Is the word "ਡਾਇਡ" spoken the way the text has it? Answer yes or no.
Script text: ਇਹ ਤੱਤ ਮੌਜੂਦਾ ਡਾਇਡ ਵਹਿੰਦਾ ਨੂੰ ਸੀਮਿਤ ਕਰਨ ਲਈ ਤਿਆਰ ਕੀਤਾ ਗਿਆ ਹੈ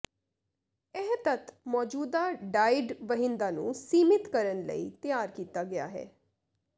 yes